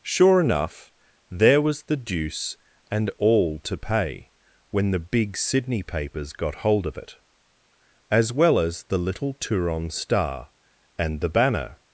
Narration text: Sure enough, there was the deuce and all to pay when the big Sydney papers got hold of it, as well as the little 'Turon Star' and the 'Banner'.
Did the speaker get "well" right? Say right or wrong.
right